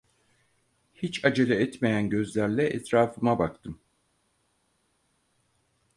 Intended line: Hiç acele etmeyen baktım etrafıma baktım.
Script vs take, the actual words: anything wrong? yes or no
yes